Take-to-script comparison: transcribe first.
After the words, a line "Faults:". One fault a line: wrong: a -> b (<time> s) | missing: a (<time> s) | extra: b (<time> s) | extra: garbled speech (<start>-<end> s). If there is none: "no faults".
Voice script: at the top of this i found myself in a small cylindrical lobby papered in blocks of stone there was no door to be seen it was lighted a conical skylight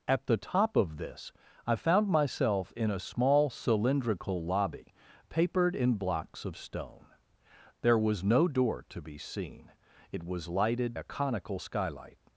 at the top of this i found myself in a small cylindrical lobby papered in blocks of stone there was no door to be seen it was lighted a conical skylight
Faults:
no faults